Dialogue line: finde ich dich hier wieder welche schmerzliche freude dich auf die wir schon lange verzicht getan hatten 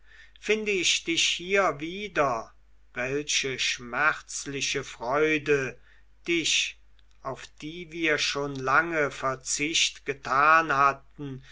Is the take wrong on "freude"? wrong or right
right